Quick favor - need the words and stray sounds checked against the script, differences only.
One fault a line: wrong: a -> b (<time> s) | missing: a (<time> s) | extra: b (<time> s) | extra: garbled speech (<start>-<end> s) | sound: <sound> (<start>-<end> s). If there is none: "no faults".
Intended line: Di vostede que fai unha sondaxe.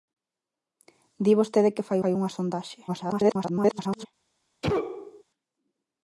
extra: fai (2.0 s)
extra: garbled speech (2.9-4.1 s)
sound: sneeze (4.6-5.2 s)